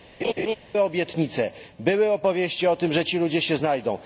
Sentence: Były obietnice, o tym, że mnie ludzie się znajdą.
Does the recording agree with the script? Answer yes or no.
no